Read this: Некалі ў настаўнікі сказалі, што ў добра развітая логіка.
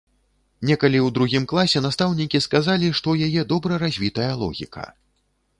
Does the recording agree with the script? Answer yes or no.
no